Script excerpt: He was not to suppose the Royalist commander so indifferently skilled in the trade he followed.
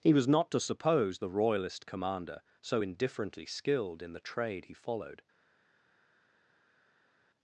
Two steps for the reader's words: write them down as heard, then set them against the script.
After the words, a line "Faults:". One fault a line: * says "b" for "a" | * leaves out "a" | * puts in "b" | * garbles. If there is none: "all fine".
He was not to suppose the Royalist commander so indifferently skilled in the trade he followed.
Faults:
all fine